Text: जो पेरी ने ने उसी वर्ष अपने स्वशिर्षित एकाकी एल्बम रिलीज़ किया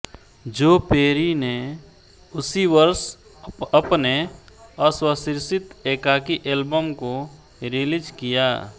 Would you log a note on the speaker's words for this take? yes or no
yes